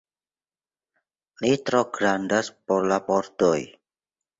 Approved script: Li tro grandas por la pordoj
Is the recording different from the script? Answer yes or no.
no